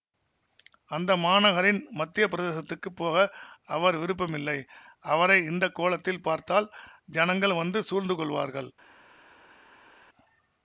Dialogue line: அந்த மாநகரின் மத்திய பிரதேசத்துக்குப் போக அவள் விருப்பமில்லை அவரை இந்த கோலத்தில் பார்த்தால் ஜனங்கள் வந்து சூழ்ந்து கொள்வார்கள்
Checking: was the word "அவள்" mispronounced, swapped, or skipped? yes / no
yes